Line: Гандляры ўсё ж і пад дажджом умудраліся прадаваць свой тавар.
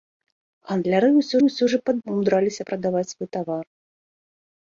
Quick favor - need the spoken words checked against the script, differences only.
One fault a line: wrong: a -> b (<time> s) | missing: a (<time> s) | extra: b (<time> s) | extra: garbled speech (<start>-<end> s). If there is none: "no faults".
extra: ўсё (1.4 s)
missing: дажджом (2.0 s)